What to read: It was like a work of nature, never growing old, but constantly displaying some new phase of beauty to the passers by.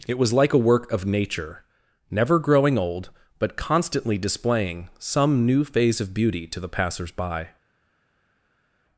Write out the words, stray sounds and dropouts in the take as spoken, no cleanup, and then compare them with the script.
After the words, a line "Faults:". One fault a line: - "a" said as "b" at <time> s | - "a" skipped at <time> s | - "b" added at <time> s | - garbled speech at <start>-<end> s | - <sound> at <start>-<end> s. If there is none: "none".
It was like a work of nature, never growing old, but constantly displaying some new phase of beauty to the passers by.
Faults:
none